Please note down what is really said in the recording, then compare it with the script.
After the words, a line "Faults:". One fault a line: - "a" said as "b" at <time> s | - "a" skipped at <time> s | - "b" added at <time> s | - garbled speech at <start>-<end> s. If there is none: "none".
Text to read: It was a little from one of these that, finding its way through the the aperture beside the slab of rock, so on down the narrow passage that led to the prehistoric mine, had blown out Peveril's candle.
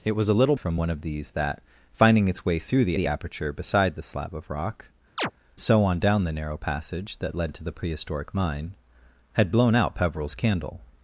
It was a little from one of these that, finding its way through the the aperture beside the slab of rock, so on down the narrow passage that led to the prehistoric mine, had blown out Peveril's candle.
Faults:
none